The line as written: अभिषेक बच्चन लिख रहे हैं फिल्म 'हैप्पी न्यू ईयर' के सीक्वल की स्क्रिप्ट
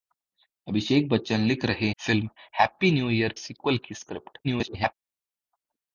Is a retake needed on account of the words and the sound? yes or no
yes